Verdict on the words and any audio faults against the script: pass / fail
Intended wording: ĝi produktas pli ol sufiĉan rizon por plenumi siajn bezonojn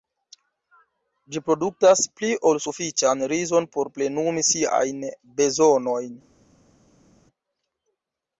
pass